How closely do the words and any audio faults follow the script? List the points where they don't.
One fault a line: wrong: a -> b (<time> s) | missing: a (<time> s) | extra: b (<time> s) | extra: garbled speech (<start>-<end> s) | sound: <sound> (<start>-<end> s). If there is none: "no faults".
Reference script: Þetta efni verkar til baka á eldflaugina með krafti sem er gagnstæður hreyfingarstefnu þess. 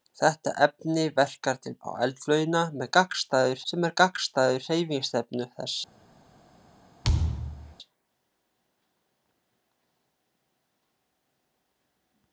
missing: baka (1.7 s)
wrong: krafti -> gagnstæður (3.0 s)
sound: thud (7.0-7.7 s)